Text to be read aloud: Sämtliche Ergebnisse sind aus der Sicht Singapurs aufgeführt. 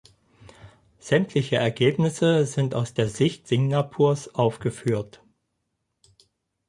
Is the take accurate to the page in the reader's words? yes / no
yes